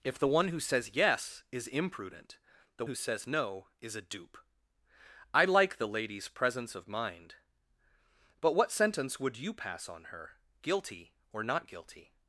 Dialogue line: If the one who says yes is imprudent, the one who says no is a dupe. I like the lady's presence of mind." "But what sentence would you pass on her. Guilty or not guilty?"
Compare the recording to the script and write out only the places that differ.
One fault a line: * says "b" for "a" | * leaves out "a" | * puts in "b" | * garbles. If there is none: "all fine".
* leaves out "one"